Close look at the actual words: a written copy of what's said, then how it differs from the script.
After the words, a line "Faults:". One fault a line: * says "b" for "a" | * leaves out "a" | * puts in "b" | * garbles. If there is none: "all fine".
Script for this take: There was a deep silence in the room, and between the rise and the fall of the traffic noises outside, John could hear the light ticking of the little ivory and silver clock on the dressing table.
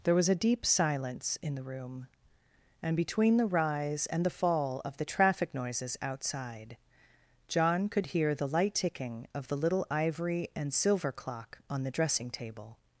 There was a deep silence in the room, and between the rise and the fall of the traffic noises outside, John could hear the light ticking of the little ivory and silver clock on the dressing table.
Faults:
all fine